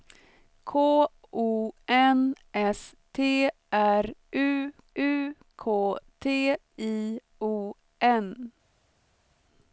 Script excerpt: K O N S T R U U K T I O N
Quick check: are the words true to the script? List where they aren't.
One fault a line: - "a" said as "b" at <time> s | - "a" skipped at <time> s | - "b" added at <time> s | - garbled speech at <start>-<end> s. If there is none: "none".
none